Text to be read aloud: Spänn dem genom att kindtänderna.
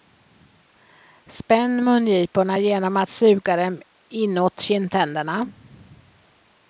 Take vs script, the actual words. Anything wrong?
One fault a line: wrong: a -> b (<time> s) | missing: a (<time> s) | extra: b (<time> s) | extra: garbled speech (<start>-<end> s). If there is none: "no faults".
wrong: dem -> mungiporna (1.8 s)
extra: suga dem inåt (3.1 s)